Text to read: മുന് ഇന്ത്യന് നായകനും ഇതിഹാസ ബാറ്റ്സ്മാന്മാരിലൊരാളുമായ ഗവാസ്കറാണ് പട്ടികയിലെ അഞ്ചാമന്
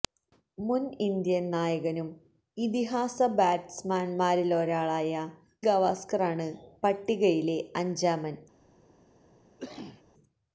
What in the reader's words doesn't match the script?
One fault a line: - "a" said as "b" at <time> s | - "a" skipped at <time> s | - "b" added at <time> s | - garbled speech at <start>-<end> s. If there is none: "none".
none